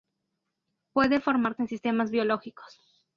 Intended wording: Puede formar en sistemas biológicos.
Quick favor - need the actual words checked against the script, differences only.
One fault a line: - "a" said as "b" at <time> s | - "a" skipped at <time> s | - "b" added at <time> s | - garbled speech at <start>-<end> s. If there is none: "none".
none